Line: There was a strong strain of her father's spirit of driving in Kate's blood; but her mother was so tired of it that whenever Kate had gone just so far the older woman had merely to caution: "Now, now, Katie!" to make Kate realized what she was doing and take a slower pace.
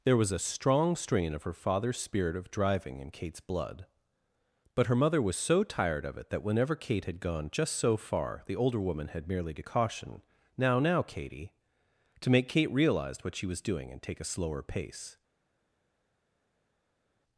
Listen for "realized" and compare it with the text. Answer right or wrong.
wrong